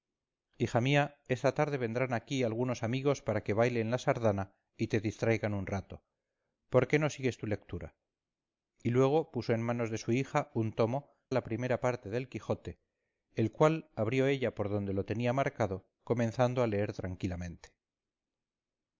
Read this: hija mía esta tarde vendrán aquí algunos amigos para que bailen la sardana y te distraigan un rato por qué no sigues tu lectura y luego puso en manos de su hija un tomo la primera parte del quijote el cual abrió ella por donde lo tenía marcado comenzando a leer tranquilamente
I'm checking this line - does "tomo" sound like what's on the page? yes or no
yes